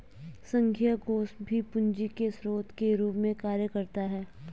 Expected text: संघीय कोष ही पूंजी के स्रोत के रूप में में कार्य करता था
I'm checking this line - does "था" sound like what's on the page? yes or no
no